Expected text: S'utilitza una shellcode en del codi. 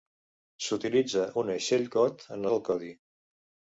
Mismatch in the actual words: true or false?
false